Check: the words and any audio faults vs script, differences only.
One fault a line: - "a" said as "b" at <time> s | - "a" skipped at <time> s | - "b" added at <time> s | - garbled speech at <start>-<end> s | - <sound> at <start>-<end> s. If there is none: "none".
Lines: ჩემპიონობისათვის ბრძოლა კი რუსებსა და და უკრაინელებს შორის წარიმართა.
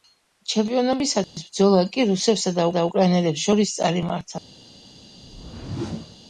- dropout at 1.2-1.4 s
- whoosh at 5.2-6.2 s